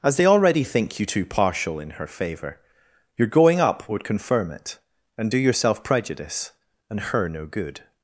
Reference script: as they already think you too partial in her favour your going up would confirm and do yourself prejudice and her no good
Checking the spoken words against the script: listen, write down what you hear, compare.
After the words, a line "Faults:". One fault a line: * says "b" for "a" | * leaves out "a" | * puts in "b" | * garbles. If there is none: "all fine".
as they already think you too partial in her favour your going up would confirm it and do yourself prejudice and her no good
Faults:
* puts in "it"